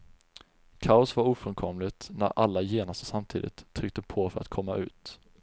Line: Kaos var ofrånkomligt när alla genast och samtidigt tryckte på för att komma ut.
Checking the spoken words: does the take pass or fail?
pass